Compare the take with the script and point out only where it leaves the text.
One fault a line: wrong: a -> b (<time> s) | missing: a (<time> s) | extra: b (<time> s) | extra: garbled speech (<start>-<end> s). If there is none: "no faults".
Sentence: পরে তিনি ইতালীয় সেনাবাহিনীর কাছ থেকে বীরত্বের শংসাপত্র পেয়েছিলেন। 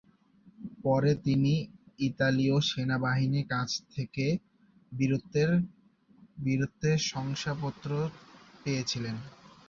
no faults